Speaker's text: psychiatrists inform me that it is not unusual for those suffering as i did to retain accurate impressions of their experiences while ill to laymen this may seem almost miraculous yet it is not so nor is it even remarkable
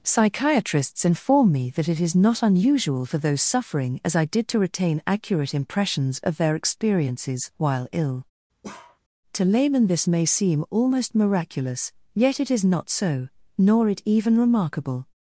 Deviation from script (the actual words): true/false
true